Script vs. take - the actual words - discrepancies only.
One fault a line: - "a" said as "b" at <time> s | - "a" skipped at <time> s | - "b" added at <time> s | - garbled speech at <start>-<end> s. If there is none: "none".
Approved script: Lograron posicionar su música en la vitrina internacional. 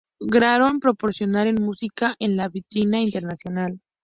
none